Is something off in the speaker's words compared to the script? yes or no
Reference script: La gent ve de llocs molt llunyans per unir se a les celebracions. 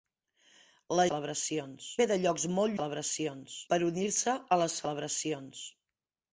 yes